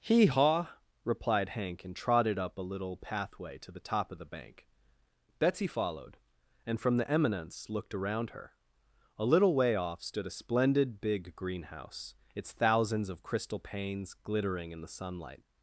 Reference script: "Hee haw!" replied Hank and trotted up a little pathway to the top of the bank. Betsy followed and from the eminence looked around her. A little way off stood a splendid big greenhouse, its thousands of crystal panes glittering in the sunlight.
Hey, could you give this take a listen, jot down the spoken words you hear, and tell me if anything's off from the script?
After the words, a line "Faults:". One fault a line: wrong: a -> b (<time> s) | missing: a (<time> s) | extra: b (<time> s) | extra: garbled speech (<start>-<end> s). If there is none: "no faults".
"Hee haw!" replied Hank and trotted up a little pathway to the top of the bank. Betsy followed and from the eminence looked around her. A little way off stood a splendid big greenhouse, its thousands of crystal panes glittering in the sunlight.
Faults:
no faults